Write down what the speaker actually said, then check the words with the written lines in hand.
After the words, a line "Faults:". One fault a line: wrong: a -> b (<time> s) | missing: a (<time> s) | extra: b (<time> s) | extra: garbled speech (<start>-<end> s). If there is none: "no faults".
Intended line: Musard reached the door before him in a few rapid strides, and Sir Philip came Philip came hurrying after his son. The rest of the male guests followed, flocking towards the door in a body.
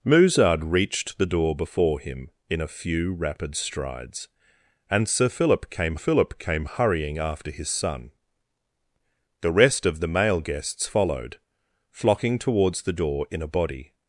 Musard reached the door before him in a few rapid strides, and Sir Philip came Philip came hurrying after his son. The rest of the male guests followed, flocking towards the door in a body.
Faults:
no faults